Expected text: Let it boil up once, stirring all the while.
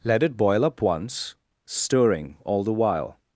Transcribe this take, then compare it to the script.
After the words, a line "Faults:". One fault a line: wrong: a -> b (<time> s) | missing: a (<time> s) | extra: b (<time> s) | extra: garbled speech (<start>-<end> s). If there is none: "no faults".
Let it boil up once, stirring all the while.
Faults:
no faults